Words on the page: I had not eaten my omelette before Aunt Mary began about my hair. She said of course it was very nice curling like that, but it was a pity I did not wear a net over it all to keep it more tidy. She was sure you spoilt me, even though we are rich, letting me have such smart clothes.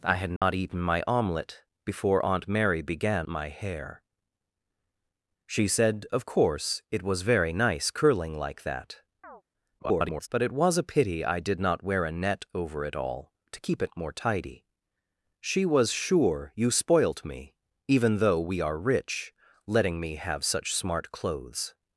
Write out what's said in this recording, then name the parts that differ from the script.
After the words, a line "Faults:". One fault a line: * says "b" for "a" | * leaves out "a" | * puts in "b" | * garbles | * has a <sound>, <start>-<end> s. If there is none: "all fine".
I had not eaten my omelette before Aunt Mary began my hair. She said of course it was very nice curling like that, [garbled] but it was a pity I did not wear a net over it all to keep it more tidy. She was sure you spoilt me, even though we are rich, letting me have such smart clothes.
Faults:
* has a dropout, 0.4-0.4 s
* leaves out "about"
* has a chirp, 9.2-9.4 s
* garbles